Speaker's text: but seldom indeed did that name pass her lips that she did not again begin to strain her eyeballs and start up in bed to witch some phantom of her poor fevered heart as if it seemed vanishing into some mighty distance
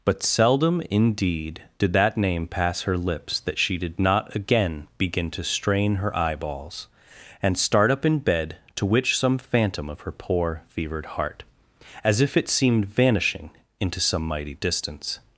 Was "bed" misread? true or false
false